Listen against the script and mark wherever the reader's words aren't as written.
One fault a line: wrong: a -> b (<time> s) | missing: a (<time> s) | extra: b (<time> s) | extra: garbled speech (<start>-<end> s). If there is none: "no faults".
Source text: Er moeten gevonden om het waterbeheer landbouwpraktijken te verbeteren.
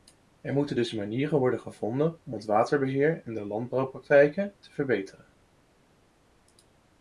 extra: dus manieren worden (0.7 s)
extra: en de (3.2 s)